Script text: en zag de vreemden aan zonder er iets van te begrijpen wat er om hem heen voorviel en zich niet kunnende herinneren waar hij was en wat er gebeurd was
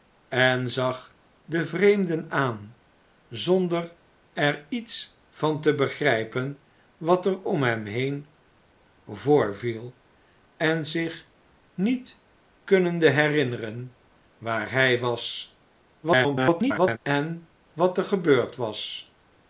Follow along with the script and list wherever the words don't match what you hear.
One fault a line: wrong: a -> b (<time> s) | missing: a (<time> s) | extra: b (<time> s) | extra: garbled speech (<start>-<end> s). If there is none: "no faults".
extra: garbled speech (16.0-17.0 s)